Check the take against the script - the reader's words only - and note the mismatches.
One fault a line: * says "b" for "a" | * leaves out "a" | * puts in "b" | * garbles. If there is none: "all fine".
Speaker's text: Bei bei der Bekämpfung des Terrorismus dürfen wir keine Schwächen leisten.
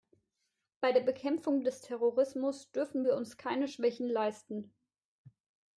* leaves out "bei"
* puts in "uns"